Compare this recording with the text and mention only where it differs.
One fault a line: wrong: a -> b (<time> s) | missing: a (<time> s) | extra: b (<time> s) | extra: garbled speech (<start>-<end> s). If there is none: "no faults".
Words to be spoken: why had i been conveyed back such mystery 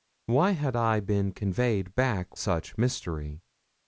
no faults